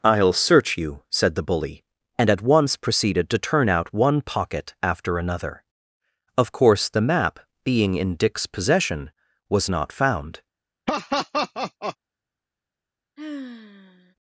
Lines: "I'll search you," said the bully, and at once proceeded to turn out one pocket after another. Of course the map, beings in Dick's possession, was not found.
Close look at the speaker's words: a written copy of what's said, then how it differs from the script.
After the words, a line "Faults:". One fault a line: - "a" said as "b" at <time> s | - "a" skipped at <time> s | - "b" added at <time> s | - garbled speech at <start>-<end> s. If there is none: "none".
"I'll search you," said the bully, and at once proceeded to turn out one pocket after another. Of course the map, being in Dick's possession, was not found.
Faults:
- "beings" said as "being" at 7.6 s